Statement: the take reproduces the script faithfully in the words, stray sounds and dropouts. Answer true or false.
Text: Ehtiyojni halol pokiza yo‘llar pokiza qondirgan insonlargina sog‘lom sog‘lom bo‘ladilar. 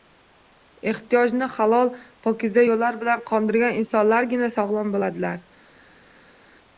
false